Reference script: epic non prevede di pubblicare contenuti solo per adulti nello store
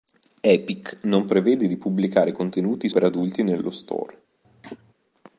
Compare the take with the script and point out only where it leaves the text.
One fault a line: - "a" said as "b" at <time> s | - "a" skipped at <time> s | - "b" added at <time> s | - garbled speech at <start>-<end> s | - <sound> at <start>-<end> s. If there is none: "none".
- "solo" skipped at 2.9 s
- cough at 4.4-4.9 s